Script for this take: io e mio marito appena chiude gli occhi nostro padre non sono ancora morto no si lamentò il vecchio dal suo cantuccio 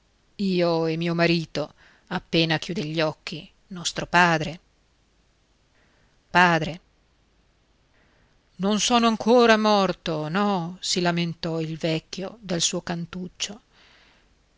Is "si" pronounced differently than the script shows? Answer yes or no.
no